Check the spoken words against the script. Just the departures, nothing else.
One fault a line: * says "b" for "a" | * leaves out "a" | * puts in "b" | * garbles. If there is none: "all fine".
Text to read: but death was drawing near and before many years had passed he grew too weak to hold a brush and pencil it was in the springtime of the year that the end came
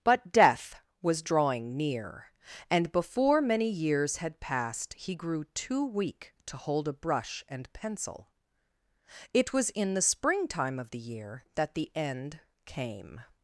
all fine